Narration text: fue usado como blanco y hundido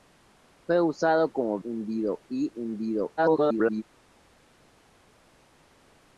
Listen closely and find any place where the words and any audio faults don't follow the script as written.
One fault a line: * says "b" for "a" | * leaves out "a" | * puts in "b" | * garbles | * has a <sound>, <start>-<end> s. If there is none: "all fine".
* says "hundido" for "blanco"
* garbles